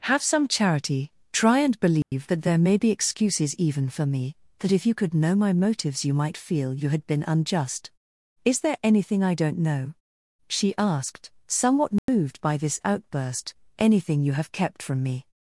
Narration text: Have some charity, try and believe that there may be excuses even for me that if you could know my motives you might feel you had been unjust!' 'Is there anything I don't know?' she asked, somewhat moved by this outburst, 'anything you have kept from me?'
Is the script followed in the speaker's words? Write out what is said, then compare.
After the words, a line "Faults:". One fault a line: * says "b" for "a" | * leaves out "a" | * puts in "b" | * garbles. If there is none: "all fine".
Have some charity, try and believe that there may be excuses even for me that if you could know my motives you might feel you had been unjust!' 'Is there anything I don't know?' she asked, somewhat moved by this outburst, 'anything you have kept from me?'
Faults:
all fine